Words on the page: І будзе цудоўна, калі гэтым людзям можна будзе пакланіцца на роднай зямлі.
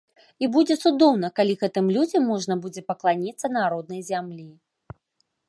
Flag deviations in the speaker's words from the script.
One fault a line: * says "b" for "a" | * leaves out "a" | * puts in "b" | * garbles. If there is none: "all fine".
all fine